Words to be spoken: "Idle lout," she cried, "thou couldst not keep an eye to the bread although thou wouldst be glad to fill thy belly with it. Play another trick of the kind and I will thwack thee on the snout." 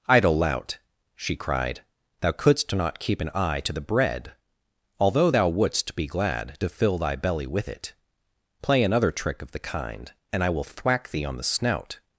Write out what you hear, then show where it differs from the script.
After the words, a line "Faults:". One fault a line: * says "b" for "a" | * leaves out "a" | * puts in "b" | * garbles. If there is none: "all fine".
"Idle lout," she cried, "thou couldst not keep an eye to the bread although thou wouldst be glad to fill thy belly with it. Play another trick of the kind and I will thwack thee on the snout."
Faults:
all fine